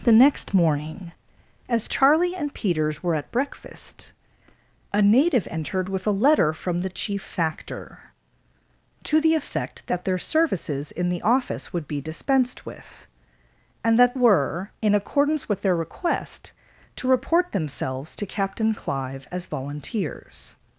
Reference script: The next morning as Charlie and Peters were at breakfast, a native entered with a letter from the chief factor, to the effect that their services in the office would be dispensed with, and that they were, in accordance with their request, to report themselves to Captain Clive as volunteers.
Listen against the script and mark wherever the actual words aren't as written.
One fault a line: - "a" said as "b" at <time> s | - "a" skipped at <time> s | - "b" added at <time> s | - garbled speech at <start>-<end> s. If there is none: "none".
- "they" skipped at 14.1 s